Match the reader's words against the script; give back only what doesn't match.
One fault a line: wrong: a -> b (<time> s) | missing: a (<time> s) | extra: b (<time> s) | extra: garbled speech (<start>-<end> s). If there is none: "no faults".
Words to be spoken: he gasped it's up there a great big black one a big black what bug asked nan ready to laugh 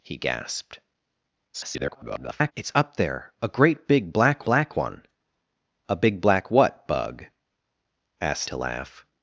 extra: garbled speech (1.5-2.5 s)
extra: black (4.4 s)
missing: nan ready (8.5 s)